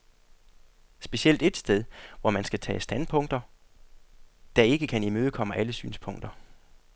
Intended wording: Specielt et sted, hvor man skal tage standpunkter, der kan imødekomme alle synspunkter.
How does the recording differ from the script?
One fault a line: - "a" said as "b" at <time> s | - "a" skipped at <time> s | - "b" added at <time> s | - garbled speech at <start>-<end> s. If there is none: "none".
- "ikke" added at 4.6 s